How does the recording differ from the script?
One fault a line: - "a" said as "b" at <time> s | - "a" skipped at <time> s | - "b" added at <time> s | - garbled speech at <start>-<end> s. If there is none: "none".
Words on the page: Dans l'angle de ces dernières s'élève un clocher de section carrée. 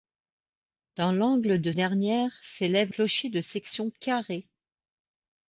- "ces" skipped at 1.7 s
- "un" skipped at 2.9 s